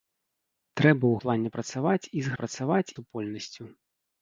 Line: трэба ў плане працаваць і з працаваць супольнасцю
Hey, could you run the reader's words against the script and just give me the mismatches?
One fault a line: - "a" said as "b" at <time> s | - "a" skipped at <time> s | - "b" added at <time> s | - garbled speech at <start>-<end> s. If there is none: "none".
none